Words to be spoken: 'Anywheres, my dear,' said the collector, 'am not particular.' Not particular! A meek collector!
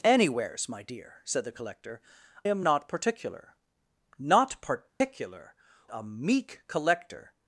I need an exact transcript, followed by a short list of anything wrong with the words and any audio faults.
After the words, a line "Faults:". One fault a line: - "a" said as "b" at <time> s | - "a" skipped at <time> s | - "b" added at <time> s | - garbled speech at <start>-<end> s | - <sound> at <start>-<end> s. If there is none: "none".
'Anywheres, my dear,' said the collector, 'am not particular.' Not particular! A meek collector!
Faults:
- dropout at 4.9-5.0 s